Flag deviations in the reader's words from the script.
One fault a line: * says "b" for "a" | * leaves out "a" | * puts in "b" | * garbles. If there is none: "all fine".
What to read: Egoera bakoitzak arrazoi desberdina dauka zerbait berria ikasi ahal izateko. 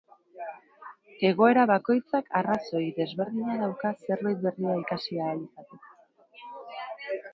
all fine